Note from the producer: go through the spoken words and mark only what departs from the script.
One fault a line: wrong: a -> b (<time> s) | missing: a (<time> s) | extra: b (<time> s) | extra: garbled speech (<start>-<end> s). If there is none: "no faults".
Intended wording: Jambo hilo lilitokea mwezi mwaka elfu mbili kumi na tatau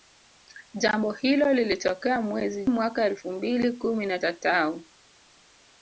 no faults